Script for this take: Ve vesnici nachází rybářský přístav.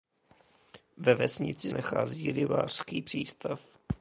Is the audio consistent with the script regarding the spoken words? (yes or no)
yes